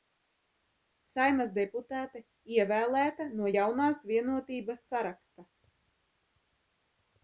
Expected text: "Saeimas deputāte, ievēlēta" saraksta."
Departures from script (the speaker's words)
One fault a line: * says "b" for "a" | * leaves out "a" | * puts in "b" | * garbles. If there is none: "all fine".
* puts in "no Jaunās Vienotības"